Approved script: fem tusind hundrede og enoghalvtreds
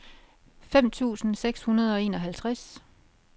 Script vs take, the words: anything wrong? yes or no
yes